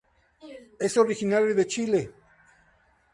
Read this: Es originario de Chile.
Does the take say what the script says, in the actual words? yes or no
yes